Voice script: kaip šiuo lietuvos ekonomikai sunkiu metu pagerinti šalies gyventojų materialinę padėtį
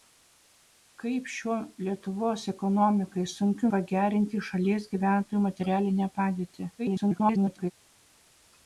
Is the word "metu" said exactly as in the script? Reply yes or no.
no